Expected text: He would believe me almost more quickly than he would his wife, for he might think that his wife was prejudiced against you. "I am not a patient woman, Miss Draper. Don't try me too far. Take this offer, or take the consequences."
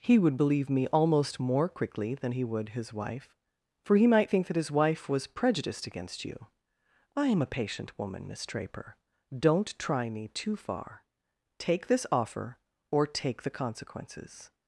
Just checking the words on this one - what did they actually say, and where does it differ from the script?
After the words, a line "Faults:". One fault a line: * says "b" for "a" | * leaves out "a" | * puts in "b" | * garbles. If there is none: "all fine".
He would believe me almost more quickly than he would his wife, for he might think that his wife was prejudiced against you. "I am a patient woman, Miss Draper. Don't try me too far. Take this offer, or take the consequences."
Faults:
* leaves out "not"